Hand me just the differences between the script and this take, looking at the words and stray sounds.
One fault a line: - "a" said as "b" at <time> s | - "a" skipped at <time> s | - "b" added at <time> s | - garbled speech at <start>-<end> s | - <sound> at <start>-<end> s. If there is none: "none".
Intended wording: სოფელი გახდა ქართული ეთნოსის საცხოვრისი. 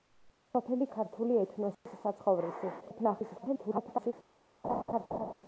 - "გახდა" skipped at 0.9 s
- dropout at 1.7-1.9 s
- garbled speech at 2.8-4.1 s
- laugh at 4.6-5.3 s